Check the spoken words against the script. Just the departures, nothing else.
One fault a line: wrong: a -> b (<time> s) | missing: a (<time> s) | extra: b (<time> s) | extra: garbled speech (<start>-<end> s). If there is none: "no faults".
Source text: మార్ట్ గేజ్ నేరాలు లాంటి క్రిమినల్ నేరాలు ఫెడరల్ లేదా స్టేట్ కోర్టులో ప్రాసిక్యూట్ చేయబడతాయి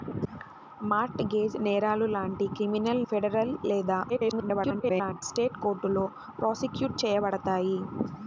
missing: నేరాలు (3.0 s)
extra: garbled speech (4.1-5.2 s)